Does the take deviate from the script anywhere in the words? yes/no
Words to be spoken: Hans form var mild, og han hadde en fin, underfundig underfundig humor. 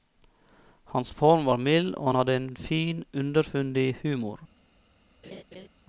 yes